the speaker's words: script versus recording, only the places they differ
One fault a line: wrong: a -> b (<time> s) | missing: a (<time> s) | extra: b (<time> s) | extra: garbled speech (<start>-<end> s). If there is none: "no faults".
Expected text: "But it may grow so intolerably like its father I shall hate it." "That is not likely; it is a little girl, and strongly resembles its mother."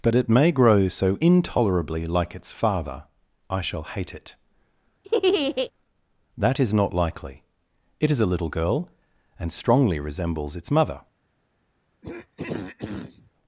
no faults